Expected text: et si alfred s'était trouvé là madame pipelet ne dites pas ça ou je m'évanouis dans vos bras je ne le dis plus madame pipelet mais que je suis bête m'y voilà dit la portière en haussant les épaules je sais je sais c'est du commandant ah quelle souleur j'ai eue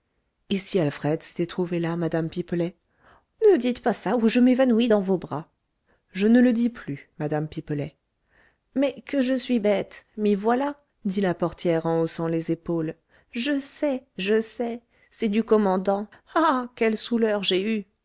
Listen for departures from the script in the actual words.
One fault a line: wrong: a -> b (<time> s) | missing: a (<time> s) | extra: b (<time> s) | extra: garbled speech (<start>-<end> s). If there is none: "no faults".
no faults